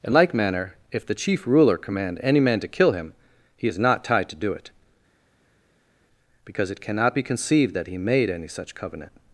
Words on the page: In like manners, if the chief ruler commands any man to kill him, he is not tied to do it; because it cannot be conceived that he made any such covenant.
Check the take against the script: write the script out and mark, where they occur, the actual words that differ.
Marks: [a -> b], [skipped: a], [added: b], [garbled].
In like [manners, -> manner] if the chief ruler [commands -> command] any man to kill him, he is not tied to do it; because it cannot be conceived that he made any such covenant.